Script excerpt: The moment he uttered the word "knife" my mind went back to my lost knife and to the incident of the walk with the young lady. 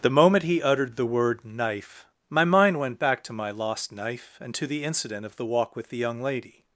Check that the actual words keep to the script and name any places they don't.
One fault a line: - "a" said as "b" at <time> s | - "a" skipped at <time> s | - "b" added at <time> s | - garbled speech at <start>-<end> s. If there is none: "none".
none